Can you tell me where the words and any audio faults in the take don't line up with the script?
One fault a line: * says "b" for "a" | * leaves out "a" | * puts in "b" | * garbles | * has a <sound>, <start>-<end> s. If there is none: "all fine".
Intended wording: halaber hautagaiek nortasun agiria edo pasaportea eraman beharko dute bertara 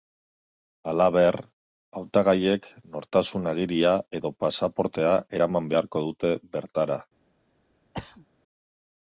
* has a throat clearing, 7.9-8.3 s